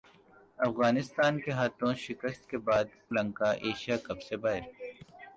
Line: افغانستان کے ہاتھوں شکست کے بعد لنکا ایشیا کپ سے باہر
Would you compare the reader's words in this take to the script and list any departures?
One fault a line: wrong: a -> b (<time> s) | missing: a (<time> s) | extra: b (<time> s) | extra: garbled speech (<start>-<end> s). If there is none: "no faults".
no faults